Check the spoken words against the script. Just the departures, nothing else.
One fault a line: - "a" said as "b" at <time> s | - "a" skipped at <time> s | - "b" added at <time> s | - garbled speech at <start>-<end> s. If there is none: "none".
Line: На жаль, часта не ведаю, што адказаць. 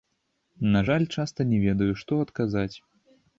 none